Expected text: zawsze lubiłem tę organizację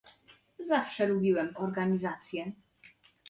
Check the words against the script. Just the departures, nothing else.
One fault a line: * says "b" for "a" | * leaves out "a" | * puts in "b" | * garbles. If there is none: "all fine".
* leaves out "tę"